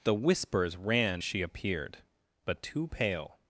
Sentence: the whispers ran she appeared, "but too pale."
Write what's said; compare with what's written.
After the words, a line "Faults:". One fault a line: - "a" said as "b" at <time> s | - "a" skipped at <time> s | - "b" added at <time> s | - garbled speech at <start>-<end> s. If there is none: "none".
the whispers ran she appeared, "but too pale."
Faults:
none